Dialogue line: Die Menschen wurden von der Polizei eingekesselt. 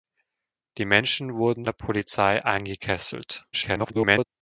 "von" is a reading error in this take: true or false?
true